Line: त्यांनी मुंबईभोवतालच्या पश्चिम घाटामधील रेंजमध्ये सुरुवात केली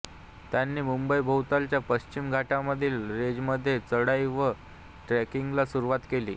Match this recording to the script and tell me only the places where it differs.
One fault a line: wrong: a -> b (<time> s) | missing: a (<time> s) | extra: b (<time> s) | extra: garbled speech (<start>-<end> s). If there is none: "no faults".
extra: चढाई व ट्रेकिंगला (3.8 s)